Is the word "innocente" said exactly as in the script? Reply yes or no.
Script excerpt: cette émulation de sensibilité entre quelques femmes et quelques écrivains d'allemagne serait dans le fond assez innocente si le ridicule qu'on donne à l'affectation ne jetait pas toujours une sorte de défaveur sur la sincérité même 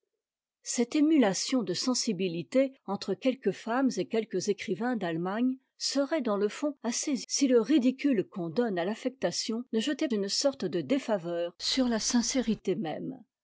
no